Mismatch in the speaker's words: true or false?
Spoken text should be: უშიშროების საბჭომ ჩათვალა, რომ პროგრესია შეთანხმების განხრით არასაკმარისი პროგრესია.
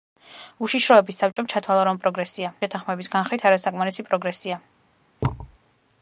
false